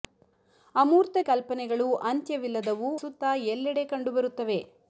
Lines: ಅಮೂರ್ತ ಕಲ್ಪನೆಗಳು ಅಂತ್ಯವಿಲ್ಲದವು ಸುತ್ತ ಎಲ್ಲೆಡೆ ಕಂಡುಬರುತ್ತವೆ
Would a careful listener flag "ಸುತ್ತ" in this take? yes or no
no